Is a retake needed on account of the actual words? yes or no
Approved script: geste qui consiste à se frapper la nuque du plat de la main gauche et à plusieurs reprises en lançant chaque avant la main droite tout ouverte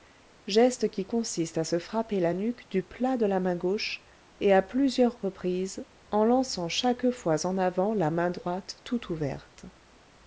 yes